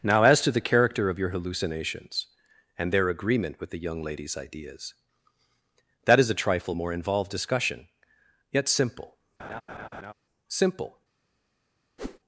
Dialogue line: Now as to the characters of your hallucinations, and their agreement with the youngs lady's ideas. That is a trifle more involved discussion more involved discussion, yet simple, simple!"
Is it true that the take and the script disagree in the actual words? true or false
true